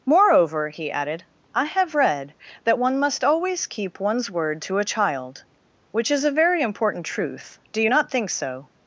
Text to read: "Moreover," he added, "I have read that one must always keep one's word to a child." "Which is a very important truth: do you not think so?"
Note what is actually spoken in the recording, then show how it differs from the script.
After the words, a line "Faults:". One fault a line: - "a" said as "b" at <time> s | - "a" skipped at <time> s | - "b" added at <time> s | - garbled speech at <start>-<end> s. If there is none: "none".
"Moreover," he added, "I have read that one must always keep one's word to a child." "Which is a very important truth: do you not think so?"
Faults:
none